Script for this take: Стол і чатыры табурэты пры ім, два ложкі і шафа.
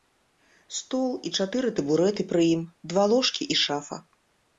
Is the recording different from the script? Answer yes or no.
no